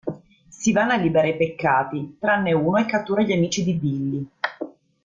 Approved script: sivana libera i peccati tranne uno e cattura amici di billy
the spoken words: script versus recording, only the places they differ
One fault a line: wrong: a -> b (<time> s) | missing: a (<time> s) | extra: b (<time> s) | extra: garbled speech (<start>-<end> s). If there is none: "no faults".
extra: gli (3.2 s)